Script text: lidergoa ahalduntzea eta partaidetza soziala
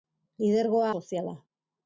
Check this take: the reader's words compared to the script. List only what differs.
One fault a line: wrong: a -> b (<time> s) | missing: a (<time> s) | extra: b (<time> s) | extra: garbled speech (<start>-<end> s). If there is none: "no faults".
missing: ahalduntzea eta partaidetza (0.9 s)